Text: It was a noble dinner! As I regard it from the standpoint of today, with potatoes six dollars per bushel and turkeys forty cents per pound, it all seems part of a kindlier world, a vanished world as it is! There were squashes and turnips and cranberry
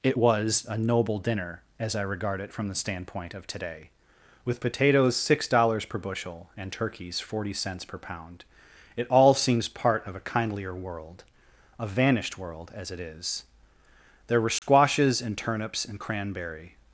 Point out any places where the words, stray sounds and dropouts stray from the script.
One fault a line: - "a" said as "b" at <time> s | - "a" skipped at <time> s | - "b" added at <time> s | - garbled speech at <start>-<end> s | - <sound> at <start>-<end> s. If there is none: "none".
- dropout at 14.6-14.6 s